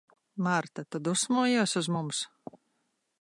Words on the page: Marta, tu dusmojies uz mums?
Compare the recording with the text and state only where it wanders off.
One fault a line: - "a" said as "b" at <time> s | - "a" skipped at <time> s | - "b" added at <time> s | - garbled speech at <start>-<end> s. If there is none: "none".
none